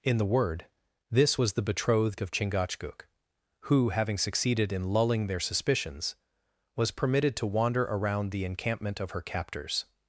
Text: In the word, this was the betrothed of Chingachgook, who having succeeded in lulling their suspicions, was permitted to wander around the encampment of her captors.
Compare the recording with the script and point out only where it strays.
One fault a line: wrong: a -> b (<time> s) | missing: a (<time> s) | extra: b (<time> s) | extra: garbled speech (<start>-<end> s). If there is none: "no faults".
no faults